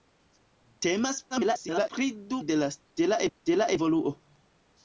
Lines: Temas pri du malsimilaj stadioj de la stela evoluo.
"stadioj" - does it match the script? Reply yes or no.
no